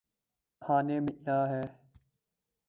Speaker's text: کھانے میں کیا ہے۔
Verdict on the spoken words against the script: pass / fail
pass